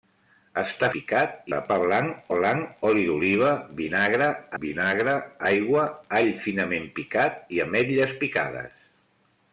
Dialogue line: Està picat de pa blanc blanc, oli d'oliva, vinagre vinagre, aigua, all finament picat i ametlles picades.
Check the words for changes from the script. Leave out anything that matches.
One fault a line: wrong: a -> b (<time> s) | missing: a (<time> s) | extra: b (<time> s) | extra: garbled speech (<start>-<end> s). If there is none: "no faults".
no faults